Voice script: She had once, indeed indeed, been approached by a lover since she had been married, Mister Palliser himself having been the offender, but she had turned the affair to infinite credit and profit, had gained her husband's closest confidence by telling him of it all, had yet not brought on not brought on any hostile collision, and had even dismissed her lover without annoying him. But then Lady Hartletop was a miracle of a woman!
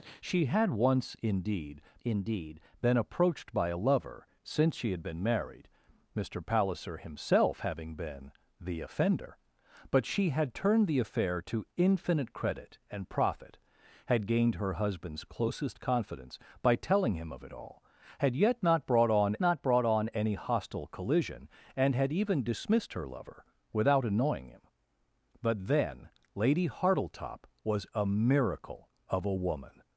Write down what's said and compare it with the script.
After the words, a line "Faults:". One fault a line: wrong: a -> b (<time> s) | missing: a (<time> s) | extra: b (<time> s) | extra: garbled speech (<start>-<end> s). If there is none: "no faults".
She had once, indeed indeed, been approached by a lover since she had been married, Mister Palliser himself having been the offender, but she had turned the affair to infinite credit and profit, had gained her husband's closest confidence by telling him of it all, had yet not brought on not brought on any hostile collision, and had even dismissed her lover without annoying him. But then Lady Hartletop was a miracle of a woman!
Faults:
no faults